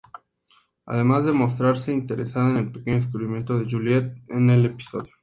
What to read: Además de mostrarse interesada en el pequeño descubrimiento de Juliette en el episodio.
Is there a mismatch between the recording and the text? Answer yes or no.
no